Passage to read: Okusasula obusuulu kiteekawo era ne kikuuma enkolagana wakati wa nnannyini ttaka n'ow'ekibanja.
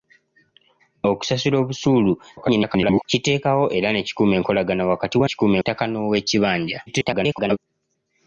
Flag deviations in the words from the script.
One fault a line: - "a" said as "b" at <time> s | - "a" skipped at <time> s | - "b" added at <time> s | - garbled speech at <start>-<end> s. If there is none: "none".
- garbled speech at 2.4-3.1 s
- "nnannyini" said as "kikuuma" at 5.3 s
- garbled speech at 6.9-7.6 s